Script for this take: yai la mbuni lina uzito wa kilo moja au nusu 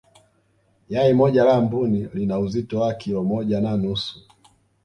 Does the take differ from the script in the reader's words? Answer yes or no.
yes